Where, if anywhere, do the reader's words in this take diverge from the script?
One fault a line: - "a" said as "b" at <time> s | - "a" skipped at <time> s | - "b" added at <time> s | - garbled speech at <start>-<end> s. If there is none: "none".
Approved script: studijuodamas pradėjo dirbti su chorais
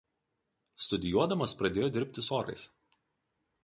- "su" skipped at 2.2 s